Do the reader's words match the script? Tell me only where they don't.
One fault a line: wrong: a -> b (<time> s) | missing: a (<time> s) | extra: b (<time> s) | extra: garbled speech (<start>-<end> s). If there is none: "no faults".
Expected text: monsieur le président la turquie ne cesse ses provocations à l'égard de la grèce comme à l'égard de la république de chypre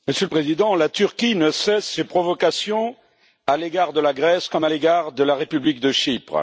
no faults